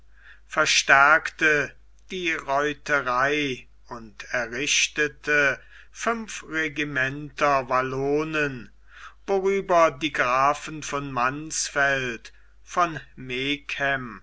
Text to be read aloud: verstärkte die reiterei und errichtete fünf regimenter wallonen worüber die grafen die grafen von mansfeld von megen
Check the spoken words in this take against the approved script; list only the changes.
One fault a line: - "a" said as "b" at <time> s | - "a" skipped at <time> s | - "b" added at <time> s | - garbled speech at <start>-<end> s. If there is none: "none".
- "die grafen" skipped at 10.8 s